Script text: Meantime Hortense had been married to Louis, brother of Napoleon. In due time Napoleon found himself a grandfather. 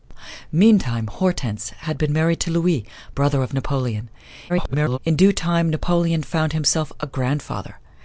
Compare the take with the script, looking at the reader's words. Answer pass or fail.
fail